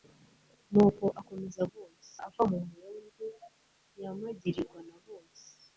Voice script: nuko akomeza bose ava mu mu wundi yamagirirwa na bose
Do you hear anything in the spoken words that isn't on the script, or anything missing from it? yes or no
no